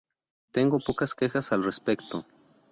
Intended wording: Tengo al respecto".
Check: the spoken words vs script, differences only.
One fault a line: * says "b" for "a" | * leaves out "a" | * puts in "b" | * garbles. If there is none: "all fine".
* puts in "pocas quejas"